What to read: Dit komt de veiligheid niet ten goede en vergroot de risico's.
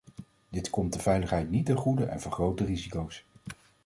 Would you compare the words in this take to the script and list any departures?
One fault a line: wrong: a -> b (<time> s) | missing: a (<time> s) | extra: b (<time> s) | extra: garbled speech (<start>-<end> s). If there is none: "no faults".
no faults